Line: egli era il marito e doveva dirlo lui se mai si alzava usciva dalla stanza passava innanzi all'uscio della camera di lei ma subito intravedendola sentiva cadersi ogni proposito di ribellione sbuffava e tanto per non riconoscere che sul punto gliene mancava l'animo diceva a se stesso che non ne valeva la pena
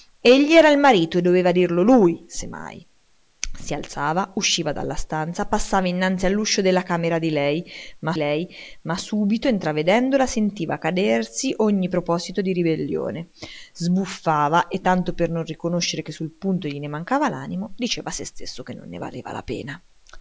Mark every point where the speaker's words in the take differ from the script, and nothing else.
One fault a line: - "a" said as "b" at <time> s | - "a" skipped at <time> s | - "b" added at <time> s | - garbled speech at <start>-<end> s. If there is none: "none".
- "lei ma" added at 8.1 s